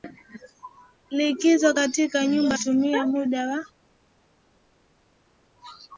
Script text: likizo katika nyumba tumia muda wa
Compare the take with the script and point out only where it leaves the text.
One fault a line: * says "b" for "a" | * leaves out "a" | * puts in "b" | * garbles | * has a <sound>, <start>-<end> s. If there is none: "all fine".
all fine